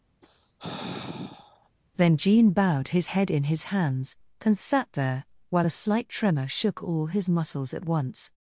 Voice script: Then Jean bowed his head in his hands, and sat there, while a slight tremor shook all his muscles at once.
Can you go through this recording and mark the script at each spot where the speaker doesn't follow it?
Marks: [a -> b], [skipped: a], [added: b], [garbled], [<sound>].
[sigh] Then Jean bowed his head in his hands, and sat there, while a slight tremor shook all his muscles at once.